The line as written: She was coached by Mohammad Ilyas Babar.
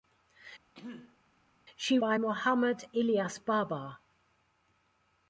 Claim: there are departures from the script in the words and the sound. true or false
true